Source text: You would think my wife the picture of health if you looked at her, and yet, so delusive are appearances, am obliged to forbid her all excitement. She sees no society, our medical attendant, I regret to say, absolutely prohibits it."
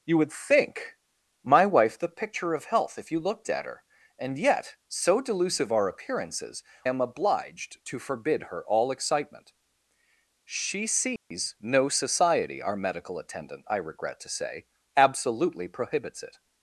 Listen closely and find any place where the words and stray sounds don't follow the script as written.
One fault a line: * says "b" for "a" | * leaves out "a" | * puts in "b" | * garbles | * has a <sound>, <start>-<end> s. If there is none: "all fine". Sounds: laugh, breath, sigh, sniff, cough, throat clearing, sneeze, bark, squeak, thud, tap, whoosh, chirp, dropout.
* has a dropout, 11.2-11.3 s